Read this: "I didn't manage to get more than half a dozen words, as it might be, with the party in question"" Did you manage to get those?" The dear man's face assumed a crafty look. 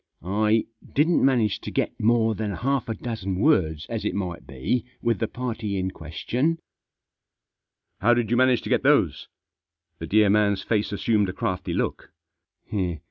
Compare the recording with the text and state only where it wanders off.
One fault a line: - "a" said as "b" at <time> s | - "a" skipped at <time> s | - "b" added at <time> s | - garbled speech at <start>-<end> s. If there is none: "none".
- "How" added at 8.0 s